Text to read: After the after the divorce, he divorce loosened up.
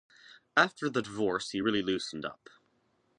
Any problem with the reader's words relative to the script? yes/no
yes